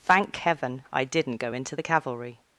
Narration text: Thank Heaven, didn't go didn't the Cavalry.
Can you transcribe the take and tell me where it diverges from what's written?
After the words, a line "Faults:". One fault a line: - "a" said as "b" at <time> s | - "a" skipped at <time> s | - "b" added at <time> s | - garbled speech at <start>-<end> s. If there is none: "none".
Thank Heaven, I didn't go into the Cavalry.
Faults:
- "I" added at 0.9 s
- "didn't" said as "into" at 1.5 s